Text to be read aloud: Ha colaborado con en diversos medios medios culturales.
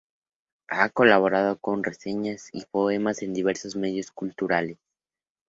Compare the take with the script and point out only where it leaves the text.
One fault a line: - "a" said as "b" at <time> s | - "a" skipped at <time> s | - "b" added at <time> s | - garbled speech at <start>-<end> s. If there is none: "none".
- "reseñas y poemas" added at 1.8 s
- "medios" skipped at 4.1 s